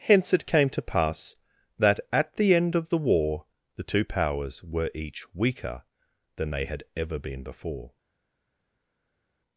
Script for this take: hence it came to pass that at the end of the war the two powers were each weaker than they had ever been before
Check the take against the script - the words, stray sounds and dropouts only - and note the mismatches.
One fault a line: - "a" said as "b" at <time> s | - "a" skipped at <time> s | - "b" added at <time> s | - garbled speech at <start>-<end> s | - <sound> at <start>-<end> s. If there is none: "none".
none